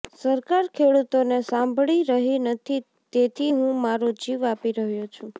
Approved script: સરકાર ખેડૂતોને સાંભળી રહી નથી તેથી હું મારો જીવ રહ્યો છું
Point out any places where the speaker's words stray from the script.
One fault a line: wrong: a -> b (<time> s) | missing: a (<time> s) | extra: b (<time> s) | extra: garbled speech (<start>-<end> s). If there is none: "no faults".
extra: આપી (4.5 s)